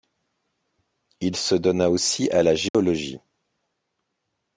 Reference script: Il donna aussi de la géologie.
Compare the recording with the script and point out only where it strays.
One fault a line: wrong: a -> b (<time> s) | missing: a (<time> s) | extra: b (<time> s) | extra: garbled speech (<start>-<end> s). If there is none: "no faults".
extra: se (1.4 s)
wrong: de -> à (2.3 s)